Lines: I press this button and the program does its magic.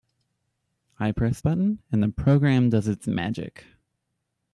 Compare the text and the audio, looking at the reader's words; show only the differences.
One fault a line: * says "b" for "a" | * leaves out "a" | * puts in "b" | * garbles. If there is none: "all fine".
* leaves out "this"